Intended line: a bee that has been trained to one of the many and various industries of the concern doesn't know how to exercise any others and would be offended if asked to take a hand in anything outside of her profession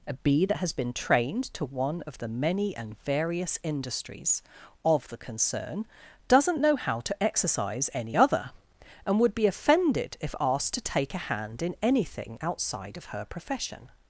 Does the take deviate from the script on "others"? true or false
true